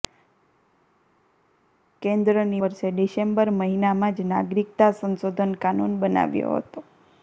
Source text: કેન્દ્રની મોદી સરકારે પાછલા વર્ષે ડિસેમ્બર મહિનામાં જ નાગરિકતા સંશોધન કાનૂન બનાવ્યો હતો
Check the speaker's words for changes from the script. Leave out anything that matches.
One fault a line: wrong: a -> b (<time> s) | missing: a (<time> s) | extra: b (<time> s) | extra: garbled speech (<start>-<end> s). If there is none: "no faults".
missing: મોદી સરકારે પાછલા (2.6 s)